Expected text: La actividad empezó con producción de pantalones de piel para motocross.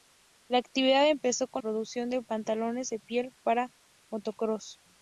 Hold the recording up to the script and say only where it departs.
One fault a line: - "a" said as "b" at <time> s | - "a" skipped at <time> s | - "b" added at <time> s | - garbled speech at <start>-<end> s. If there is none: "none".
none